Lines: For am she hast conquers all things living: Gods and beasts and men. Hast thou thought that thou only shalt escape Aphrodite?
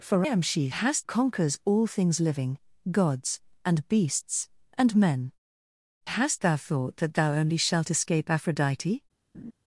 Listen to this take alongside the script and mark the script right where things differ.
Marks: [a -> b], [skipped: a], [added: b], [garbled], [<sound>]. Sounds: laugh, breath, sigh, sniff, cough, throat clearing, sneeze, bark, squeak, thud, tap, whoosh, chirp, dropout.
For am she hast conquers all things living: Gods and beasts and men. Hast thou thought that thou only shalt escape Aphrodite? [laugh]